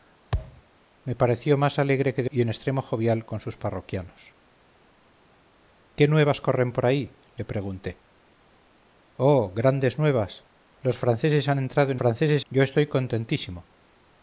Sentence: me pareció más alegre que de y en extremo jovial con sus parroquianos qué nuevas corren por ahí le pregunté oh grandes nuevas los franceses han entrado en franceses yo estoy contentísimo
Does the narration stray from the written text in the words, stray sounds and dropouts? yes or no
yes